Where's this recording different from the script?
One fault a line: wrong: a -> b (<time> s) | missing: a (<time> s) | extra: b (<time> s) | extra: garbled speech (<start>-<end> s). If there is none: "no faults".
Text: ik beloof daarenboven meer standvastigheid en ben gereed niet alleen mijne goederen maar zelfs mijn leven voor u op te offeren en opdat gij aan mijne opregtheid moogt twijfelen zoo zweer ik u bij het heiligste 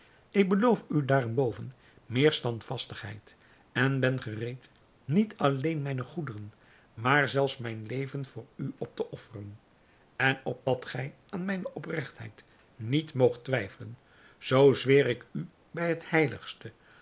extra: u (0.9 s)
extra: niet (12.8 s)